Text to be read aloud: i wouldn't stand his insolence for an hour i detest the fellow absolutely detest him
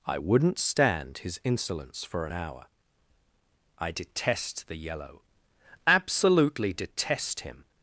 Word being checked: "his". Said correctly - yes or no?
yes